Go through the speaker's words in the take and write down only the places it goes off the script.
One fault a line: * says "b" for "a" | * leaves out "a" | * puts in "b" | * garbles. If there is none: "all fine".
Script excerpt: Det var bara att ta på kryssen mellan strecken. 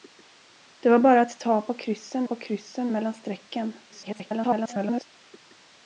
* puts in "på kryssen"
* garbles